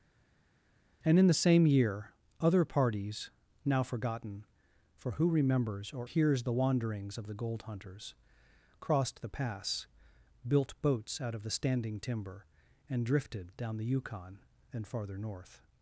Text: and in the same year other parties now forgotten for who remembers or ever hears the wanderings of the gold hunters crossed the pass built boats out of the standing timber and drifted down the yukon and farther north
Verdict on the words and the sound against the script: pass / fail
fail